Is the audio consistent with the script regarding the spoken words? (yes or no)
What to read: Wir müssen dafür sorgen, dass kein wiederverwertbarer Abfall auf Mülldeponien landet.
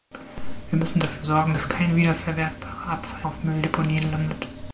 yes